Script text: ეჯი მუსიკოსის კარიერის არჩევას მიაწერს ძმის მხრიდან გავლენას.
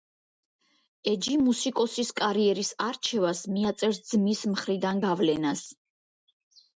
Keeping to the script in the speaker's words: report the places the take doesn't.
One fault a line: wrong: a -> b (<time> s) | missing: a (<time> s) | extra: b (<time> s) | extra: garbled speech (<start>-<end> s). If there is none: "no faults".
no faults